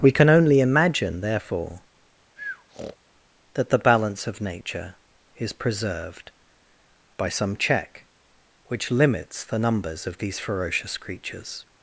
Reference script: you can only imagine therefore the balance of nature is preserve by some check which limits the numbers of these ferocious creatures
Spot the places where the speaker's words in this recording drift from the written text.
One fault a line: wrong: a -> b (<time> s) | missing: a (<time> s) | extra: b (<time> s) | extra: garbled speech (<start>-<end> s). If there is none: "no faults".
wrong: you -> we (0.0 s)
extra: that (3.5 s)
wrong: preserve -> preserved (5.5 s)